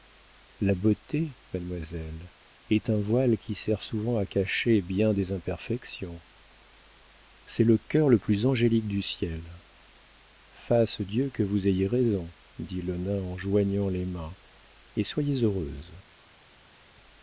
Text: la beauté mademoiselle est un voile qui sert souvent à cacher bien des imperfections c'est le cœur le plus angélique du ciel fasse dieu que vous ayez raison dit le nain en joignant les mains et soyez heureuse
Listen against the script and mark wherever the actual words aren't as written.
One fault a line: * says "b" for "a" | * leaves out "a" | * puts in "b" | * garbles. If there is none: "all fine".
all fine